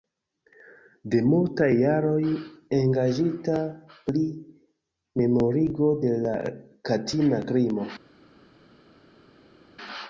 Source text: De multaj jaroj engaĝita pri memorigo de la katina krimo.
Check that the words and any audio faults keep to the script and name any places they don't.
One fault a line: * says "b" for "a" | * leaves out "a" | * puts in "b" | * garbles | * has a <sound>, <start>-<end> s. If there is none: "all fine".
all fine